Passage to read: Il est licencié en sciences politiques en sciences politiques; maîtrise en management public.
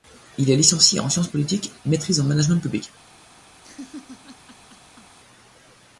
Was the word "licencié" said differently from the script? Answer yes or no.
no